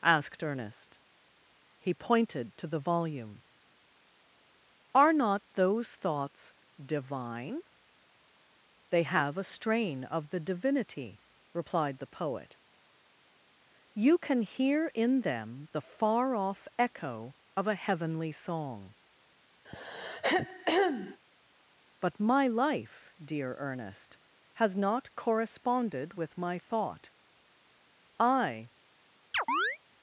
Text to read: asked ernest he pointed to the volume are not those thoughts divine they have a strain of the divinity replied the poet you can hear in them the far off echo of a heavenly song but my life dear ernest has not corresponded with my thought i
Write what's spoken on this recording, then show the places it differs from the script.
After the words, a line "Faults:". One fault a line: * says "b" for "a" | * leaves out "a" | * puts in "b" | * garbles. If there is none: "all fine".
asked ernest he pointed to the volume are not those thoughts divine they have a strain of the divinity replied the poet you can hear in them the far off echo of a heavenly song but my life dear ernest has not corresponded with my thought i
Faults:
all fine